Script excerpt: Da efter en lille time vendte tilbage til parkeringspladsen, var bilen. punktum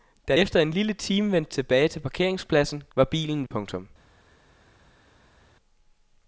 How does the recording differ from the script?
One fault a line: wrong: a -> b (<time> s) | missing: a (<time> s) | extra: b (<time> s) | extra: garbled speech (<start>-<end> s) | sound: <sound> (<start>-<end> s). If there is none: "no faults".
no faults